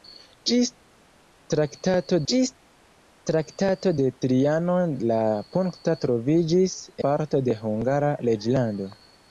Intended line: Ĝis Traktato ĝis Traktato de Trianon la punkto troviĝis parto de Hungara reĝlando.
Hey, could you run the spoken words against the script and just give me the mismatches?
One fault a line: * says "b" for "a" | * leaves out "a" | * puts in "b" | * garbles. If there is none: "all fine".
all fine